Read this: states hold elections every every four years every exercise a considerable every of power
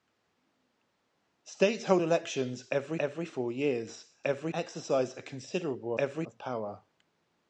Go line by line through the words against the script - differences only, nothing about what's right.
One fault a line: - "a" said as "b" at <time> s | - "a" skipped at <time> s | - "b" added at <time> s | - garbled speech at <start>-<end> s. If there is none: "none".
none